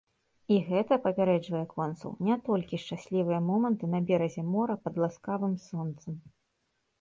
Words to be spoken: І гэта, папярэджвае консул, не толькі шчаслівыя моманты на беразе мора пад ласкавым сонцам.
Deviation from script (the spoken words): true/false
false